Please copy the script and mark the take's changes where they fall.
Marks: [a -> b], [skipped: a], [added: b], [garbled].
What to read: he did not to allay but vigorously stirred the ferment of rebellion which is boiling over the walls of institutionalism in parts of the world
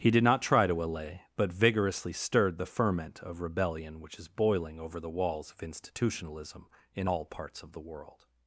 he did not [added: try] to allay but vigorously stirred the ferment of rebellion which is boiling over the walls of institutionalism in [added: all] parts of the world